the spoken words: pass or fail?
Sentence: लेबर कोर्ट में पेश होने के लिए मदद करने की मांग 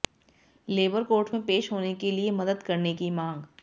pass